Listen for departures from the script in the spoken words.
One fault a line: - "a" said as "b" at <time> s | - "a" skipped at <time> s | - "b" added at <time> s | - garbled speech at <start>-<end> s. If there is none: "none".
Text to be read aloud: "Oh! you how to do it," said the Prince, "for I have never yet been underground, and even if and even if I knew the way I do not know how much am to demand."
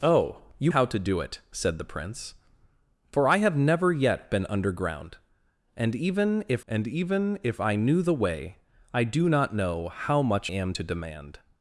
none